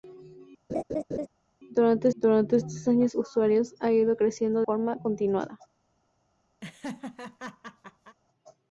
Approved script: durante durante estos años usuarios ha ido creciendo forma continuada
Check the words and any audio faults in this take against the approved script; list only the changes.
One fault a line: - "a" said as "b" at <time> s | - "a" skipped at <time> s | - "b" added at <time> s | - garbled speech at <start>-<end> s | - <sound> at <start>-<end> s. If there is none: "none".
- laugh at 0.7-1.3 s
- laugh at 6.6-8.2 s